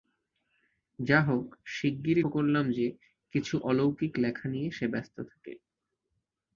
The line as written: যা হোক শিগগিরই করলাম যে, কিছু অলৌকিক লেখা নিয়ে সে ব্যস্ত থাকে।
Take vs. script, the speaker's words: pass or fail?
pass